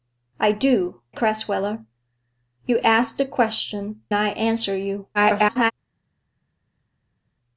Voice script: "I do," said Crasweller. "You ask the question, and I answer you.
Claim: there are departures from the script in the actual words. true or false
true